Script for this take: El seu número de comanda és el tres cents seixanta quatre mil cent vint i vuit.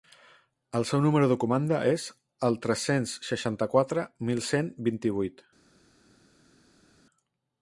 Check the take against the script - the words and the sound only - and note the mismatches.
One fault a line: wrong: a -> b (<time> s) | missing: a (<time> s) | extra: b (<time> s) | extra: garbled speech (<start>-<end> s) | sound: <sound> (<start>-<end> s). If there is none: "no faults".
no faults